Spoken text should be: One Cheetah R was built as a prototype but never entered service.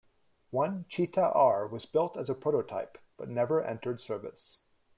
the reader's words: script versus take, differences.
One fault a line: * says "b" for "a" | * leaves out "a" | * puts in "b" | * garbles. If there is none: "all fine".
all fine